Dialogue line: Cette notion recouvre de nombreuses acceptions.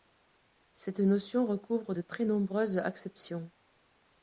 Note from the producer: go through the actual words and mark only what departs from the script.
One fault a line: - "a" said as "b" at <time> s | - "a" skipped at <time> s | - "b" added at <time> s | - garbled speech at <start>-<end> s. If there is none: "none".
- "très" added at 2.0 s